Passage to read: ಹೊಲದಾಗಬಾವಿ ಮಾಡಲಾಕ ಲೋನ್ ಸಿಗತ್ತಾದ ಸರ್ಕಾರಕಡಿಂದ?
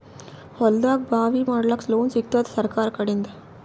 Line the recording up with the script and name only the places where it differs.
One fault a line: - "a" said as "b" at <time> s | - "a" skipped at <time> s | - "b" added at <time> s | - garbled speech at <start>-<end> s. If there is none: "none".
none